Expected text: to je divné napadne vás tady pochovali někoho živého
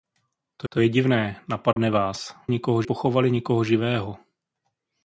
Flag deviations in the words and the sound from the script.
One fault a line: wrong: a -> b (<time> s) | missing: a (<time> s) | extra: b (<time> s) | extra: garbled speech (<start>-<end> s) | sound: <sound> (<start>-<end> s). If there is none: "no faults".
extra: to (0.7 s)
sound: dropout (1.7-1.8 s)
wrong: tady -> někoho (2.5 s)